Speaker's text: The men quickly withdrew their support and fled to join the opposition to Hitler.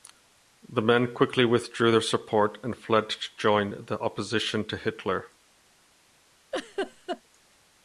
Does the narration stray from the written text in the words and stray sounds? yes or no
yes